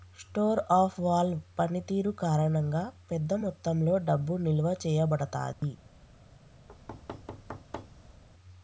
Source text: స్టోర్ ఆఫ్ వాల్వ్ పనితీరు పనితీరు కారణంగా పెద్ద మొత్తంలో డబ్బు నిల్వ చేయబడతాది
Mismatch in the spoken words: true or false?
true